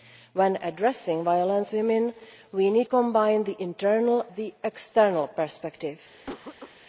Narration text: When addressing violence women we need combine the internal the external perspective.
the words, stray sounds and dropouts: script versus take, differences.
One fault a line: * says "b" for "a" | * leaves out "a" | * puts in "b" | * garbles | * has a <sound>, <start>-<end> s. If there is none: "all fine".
* has a cough, 6.2-6.8 s